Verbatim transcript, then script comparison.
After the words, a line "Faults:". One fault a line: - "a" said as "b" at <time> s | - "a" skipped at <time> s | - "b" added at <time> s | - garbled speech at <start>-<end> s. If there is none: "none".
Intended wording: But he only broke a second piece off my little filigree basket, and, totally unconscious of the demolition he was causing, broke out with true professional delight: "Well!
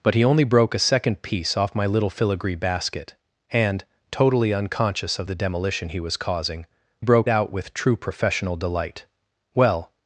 But he only broke a second piece off my little filigree basket, and, totally unconscious of the demolition he was causing, broke out with true professional delight: "Well!
Faults:
none